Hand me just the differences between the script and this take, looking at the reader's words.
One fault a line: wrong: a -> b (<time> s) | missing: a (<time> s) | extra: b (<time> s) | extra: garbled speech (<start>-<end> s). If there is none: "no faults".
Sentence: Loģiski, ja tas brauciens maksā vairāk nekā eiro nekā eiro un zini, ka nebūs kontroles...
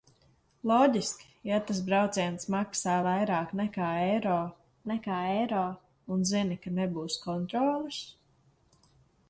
no faults